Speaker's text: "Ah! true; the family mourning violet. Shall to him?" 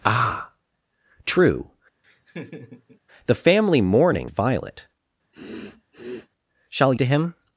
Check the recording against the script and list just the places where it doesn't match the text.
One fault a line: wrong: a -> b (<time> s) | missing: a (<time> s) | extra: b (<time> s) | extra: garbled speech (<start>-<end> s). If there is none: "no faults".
no faults